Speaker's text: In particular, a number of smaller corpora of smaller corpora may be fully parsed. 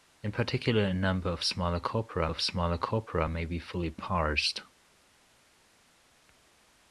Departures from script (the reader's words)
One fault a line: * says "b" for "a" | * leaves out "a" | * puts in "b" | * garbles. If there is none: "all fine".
all fine